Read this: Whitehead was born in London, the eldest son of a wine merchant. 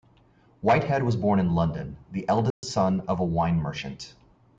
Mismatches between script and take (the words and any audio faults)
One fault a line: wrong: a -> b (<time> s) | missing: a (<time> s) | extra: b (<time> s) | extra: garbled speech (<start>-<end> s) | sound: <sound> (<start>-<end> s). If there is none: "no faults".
sound: dropout (2.5-2.6 s)